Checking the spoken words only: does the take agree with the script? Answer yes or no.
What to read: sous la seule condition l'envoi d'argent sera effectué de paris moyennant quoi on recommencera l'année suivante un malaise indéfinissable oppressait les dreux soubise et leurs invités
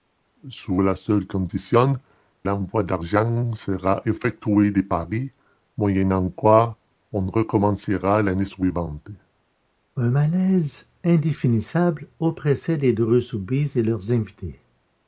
yes